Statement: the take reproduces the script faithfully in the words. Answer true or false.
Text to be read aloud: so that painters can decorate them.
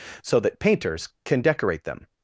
true